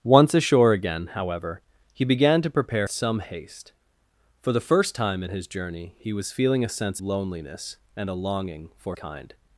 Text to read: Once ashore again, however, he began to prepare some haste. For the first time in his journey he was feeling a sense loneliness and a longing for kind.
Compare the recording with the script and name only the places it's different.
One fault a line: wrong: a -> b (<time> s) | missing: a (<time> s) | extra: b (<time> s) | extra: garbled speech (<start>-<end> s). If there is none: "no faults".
no faults